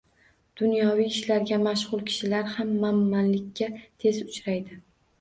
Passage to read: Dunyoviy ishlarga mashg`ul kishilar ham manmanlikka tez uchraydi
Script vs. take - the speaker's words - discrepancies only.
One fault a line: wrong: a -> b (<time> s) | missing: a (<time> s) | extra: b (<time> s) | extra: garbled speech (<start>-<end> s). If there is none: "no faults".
no faults